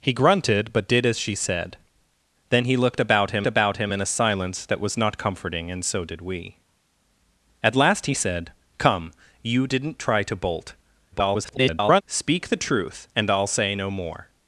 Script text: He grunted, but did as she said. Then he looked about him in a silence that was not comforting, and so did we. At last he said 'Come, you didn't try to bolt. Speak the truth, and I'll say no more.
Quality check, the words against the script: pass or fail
fail